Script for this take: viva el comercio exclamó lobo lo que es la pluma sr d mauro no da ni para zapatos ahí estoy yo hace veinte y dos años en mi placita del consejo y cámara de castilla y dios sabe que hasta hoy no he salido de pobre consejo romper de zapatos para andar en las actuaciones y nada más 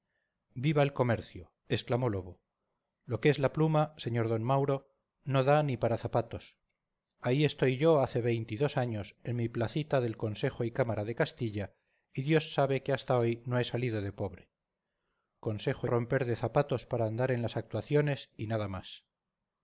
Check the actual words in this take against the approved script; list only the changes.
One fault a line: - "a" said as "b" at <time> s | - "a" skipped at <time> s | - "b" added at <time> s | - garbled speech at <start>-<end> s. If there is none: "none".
none